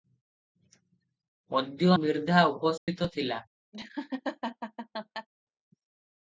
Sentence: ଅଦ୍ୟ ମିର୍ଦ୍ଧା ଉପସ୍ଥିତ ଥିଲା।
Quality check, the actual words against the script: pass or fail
pass